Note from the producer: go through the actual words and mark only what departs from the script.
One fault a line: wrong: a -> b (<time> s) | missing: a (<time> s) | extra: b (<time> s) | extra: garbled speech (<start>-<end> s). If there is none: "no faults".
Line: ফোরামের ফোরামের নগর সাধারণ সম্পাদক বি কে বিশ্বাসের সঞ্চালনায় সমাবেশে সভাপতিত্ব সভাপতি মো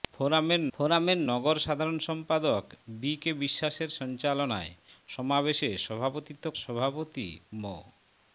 no faults